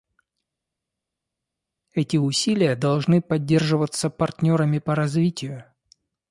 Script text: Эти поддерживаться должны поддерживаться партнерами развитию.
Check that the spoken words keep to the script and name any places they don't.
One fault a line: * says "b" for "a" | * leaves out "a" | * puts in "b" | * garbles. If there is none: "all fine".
* says "усилия" for "поддерживаться"
* puts in "по"